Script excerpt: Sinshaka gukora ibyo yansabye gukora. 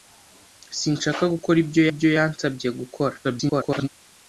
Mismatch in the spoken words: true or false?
true